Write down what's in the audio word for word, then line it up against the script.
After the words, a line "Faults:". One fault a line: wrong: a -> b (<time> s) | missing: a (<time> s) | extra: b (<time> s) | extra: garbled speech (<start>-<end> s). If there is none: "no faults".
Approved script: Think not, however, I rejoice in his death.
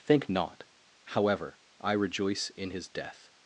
Think not, however, I rejoice in his death.
Faults:
no faults